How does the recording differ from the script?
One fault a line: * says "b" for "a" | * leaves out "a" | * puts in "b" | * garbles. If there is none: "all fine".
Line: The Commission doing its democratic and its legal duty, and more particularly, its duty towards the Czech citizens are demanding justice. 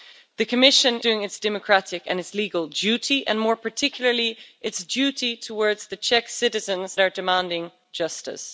all fine